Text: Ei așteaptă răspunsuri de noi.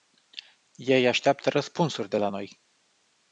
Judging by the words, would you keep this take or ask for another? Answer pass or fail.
fail